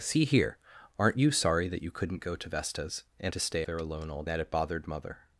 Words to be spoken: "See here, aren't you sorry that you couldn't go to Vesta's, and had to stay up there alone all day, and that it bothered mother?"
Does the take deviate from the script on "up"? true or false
true